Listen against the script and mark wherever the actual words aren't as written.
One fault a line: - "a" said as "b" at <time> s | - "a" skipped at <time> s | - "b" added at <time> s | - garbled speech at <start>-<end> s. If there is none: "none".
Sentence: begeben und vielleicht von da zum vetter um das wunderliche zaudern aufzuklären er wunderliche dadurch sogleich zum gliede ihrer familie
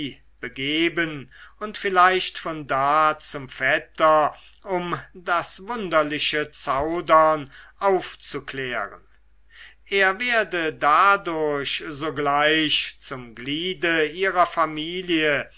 - "wunderliche" said as "werde" at 10.2 s